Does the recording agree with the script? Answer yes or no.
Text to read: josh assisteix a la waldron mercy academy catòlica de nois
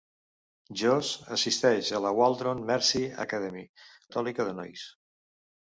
yes